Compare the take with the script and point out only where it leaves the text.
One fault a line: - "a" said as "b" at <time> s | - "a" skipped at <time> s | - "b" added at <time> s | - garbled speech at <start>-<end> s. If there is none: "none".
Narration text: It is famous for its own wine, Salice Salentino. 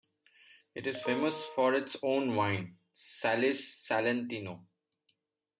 none